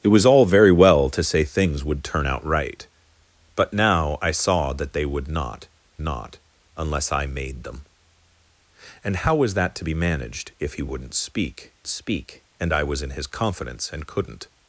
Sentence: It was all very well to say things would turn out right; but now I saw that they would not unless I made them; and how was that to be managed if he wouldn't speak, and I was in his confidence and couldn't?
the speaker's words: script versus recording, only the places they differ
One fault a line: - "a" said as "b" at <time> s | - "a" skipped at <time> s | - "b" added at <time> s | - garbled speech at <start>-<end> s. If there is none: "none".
- "not" added at 6.0 s
- "speak" added at 11.9 s